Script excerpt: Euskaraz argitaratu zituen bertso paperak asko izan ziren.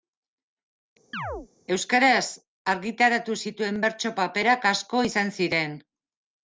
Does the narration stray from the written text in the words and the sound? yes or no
yes